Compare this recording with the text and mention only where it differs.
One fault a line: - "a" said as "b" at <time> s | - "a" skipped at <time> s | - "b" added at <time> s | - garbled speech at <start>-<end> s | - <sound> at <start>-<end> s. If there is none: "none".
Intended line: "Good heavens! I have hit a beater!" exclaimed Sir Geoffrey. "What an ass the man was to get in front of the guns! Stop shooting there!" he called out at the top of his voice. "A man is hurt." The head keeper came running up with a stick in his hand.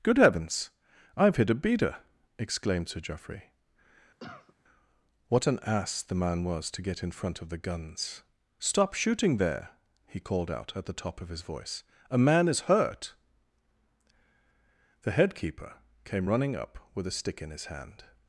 - cough at 4.2-4.6 s